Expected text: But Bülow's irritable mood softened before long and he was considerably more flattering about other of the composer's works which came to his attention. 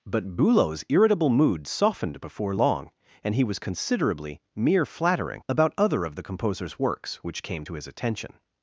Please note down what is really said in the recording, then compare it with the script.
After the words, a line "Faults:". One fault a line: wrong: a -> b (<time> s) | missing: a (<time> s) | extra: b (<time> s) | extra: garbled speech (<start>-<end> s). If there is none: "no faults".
But Bülow's irritable mood softened before long and he was considerably mere flattering about other of the composer's works which came to his attention.
Faults:
wrong: more -> mere (4.5 s)